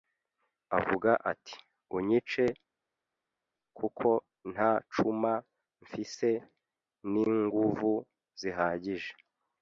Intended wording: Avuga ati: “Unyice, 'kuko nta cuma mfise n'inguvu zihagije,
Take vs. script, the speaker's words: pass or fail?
pass